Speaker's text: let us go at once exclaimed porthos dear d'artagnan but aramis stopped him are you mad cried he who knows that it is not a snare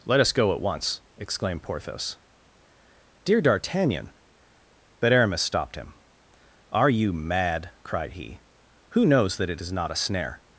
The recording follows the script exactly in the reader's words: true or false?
true